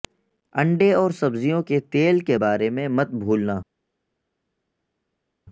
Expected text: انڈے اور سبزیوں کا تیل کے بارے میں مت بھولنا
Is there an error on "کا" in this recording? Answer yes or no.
yes